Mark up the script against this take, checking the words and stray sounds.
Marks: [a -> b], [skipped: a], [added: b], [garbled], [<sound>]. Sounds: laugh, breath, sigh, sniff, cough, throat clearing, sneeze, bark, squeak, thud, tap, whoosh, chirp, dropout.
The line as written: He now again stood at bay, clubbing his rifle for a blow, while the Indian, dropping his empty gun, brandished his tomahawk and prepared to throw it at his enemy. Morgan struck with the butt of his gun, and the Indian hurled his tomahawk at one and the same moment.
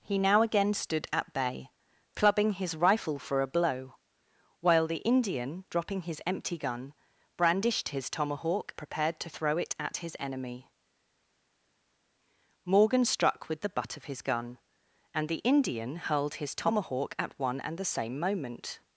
He now again stood at bay, clubbing his rifle for a blow, while the Indian, dropping his empty gun, brandished his tomahawk [skipped: and] prepared to throw it at his enemy. Morgan struck with the butt of his gun, and the Indian hurled his tomahawk at one and the same moment.